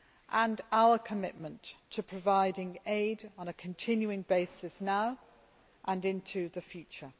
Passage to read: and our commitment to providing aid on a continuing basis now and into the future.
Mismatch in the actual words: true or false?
false